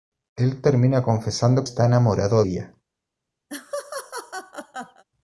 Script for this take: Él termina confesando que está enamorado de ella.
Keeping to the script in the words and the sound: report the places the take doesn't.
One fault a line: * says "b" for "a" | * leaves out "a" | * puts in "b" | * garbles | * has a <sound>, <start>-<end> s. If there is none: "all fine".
* leaves out "que"
* leaves out "de"
* has a laugh, 3.5-5.0 s